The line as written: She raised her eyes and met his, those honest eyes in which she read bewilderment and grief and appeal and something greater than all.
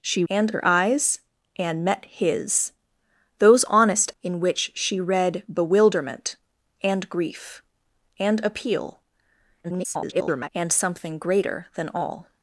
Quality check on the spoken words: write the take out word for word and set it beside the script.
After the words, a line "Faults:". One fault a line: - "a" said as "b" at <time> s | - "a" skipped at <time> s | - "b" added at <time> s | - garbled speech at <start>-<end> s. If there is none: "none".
She and her eyes and met his, those honest in which she read bewilderment and grief and appeal [garbled] and something greater than all.
Faults:
- "raised" said as "and" at 0.3 s
- "eyes" skipped at 4.1 s
- garbled speech at 9.6-10.5 s